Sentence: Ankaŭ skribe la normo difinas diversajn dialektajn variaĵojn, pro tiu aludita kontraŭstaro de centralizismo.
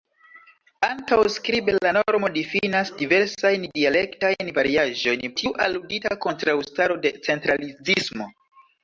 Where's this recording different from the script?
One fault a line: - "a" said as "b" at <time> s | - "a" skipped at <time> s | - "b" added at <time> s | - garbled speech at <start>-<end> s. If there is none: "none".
- "pro" skipped at 5.3 s